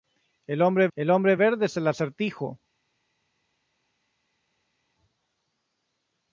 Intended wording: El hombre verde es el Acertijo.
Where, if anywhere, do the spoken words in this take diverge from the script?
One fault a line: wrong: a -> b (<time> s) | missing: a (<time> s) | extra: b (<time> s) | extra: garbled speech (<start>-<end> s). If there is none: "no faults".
extra: el hombre (1.0 s)